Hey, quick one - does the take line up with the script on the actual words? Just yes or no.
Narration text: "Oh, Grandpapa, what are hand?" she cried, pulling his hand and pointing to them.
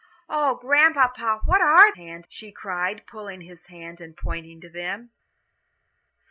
yes